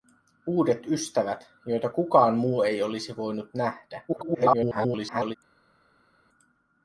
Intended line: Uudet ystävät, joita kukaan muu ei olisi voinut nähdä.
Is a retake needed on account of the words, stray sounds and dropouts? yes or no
yes